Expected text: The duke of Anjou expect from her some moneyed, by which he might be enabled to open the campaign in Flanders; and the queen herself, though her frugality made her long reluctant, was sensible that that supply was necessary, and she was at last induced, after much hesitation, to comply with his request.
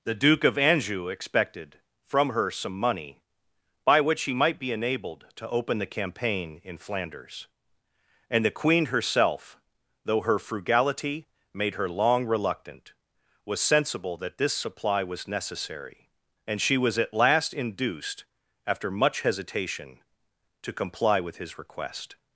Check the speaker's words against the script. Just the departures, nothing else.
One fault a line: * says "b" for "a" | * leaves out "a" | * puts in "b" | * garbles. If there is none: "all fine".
* says "expected" for "expect"
* says "money" for "moneyed"
* says "this" for "that"